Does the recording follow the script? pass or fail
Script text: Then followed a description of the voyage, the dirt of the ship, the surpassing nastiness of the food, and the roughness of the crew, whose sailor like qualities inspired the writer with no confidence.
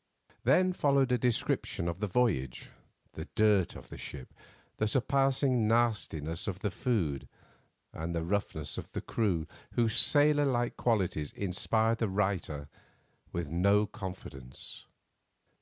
pass